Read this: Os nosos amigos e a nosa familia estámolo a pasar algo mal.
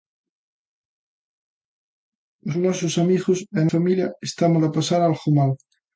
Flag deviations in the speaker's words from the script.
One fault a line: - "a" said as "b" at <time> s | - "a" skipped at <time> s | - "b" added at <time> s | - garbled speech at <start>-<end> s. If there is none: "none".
- "nosa" skipped at 3.7 s